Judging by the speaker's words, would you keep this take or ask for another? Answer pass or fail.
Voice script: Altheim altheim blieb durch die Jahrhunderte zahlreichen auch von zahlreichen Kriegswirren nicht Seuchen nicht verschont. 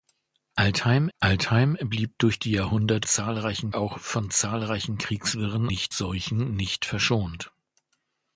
pass